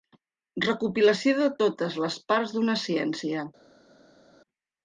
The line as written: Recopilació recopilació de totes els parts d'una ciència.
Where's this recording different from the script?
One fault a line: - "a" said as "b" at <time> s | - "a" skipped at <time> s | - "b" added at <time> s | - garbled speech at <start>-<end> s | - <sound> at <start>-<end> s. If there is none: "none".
- "recopilació" skipped at 1.3 s
- "els" said as "les" at 2.0 s